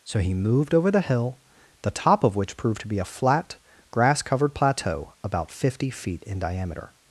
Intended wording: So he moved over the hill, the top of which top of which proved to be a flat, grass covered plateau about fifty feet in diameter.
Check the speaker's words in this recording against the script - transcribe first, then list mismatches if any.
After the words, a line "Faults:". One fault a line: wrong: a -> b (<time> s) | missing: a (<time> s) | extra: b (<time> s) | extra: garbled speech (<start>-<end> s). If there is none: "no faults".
So he moved over the hill, the top of which proved to be a flat, grass covered plateau about fifty feet in diameter.
Faults:
missing: top of which (2.6 s)